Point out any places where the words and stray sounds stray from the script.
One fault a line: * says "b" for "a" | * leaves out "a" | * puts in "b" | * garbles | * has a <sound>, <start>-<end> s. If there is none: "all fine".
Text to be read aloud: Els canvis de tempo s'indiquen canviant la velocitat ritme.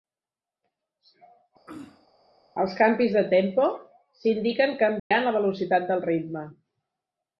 * has a throat clearing, 1.7-2.1 s
* has a dropout, 5.0-5.1 s
* puts in "del"